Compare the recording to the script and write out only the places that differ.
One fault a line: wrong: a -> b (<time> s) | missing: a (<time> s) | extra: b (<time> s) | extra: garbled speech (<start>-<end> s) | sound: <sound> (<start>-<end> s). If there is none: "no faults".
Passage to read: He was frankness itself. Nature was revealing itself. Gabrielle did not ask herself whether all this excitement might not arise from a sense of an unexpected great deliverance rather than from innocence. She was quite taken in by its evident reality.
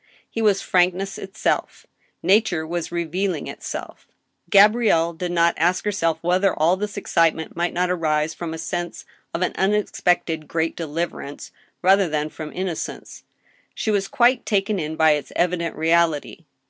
no faults